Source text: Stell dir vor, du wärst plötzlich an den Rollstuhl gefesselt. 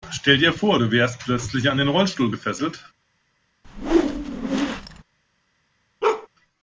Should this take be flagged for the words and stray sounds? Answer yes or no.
yes